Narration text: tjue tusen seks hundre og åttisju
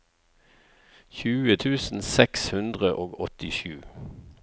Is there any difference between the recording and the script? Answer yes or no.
no